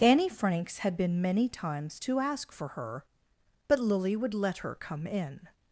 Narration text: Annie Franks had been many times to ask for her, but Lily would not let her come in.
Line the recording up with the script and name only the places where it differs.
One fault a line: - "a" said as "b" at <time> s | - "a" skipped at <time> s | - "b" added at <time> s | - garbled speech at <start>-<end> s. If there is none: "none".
- "not" skipped at 4.4 s